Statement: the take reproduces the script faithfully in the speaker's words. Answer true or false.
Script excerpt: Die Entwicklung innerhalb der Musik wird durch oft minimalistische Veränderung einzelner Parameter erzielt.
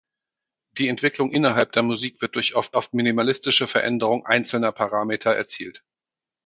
false